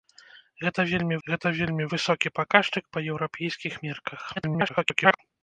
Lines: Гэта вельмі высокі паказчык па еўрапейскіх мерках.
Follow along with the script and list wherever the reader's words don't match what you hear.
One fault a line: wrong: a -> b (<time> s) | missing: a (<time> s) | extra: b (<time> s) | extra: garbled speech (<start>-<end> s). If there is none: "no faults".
extra: гэта вельмі (1.3 s)
extra: garbled speech (4.4-5.2 s)